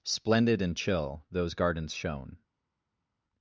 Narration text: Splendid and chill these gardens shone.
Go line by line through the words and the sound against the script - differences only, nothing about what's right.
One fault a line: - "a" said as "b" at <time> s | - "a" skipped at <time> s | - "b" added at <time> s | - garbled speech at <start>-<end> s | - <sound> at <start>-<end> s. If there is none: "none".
- "these" said as "those" at 1.3 s